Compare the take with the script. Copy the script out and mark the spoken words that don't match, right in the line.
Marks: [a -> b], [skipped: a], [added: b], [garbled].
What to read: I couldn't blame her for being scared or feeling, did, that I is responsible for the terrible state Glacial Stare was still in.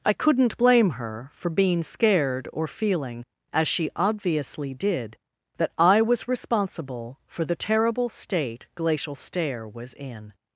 I couldn't blame her for being scared or feeling, [added: as she obviously] did, that I [is -> was] responsible for the terrible state Glacial Stare was [skipped: still] in.